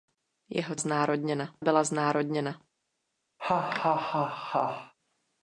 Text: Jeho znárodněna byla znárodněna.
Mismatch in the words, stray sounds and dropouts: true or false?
true